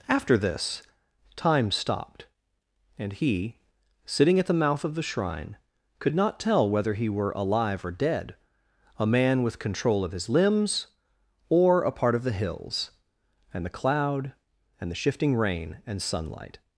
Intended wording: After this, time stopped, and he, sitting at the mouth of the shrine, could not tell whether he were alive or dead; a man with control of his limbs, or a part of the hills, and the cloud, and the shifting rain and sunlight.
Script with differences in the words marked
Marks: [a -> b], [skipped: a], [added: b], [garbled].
After this, time stopped, and he, sitting at the mouth of the shrine, could not tell whether he were alive or dead; a man with control of his limbs, or a part of the hills, and the cloud, and the shifting rain and sunlight.